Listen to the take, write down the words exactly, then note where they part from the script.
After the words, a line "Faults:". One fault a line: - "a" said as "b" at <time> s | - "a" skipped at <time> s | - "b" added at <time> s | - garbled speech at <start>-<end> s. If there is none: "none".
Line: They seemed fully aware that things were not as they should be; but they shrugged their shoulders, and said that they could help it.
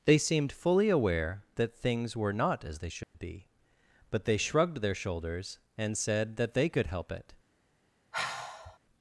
They seemed fully aware that things were not as they should be; but they shrugged their shoulders, and said that they could help it.
Faults:
none